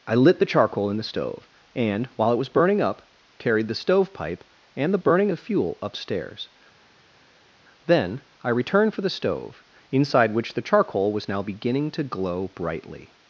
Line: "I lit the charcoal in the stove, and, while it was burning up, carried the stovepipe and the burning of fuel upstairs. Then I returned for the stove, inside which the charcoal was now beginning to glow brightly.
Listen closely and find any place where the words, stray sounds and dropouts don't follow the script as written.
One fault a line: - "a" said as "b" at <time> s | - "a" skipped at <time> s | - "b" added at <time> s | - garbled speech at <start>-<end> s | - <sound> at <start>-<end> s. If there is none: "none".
none